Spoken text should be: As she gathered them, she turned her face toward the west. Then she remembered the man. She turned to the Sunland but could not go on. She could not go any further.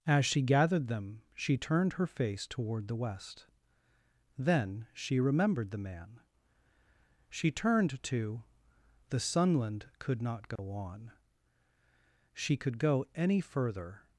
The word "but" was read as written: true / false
false